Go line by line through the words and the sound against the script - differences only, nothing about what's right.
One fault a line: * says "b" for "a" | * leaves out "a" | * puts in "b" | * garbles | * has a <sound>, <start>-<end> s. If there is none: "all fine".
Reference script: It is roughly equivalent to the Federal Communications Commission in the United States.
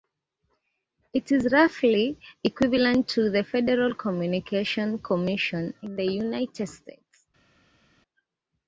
all fine